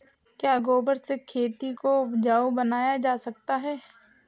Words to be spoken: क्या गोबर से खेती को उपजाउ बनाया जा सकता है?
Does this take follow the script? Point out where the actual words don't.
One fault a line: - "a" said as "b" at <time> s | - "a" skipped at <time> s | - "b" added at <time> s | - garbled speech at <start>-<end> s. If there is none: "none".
none